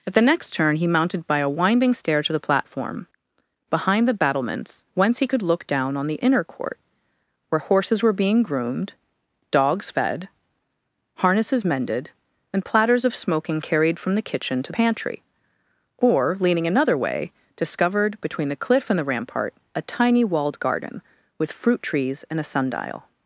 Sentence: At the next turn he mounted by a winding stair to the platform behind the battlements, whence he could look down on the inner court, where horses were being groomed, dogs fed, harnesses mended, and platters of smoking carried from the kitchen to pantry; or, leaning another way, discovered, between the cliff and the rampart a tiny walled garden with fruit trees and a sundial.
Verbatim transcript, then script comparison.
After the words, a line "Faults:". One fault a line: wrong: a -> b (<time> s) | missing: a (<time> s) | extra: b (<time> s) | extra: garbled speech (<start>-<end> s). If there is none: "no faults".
At the next turn he mounted by a winding stair to the platform behind the battlements, whence he could look down on the inner court, where horses were being groomed, dogs fed, harnesses mended, and platters of smoking carried from the kitchen to pantry; or, leaning another way, discovered, between the cliff and the rampart a tiny walled garden with fruit trees and a sundial.
Faults:
no faults